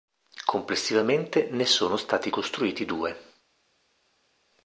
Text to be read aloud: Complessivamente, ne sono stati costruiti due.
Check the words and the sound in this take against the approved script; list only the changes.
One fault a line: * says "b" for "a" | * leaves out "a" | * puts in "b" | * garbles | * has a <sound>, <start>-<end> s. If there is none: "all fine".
all fine